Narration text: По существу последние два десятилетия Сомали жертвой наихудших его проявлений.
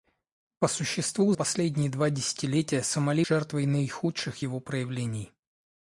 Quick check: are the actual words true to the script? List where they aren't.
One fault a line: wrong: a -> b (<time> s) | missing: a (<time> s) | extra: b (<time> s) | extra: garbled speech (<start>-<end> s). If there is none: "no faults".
no faults